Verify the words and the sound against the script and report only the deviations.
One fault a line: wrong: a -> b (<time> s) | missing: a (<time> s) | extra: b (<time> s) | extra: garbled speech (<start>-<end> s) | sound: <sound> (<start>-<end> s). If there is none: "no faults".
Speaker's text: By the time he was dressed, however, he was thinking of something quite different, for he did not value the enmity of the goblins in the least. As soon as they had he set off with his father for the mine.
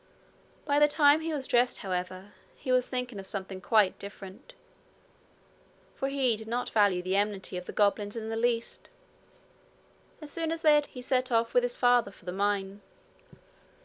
no faults